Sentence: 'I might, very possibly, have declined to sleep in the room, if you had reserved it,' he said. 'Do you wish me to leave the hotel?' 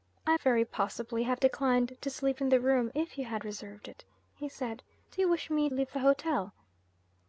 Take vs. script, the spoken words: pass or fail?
fail